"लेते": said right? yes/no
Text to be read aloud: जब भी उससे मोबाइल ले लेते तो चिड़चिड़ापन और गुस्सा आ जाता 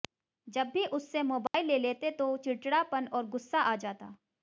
yes